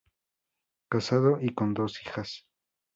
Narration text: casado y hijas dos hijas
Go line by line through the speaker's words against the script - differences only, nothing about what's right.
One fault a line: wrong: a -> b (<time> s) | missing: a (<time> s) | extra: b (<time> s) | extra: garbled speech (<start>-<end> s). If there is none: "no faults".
wrong: hijas -> con (1.5 s)